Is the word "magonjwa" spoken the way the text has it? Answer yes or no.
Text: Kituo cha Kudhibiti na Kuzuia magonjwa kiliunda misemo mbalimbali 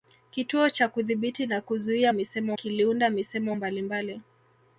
no